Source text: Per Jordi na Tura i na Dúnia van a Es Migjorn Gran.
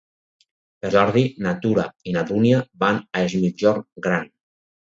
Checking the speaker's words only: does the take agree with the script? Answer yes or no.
yes